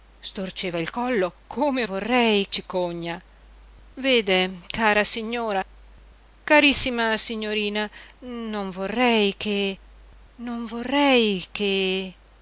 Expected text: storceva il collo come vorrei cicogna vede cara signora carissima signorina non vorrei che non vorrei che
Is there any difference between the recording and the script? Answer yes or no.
no